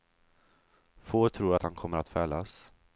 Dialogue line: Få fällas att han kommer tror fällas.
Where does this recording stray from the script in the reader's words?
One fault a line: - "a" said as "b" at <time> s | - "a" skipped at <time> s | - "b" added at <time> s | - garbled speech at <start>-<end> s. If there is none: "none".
- "fällas" said as "tror" at 1.3 s
- "tror" said as "att" at 2.0 s